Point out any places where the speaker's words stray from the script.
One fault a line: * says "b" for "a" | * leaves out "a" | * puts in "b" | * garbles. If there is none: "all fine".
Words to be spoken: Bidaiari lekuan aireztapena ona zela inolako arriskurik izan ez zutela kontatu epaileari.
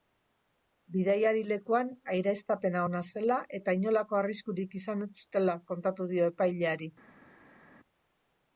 * puts in "eta"
* puts in "dio"